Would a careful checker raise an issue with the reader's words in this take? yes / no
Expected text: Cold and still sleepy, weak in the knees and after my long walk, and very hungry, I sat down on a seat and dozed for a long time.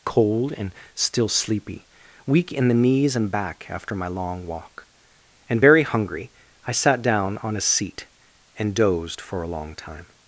yes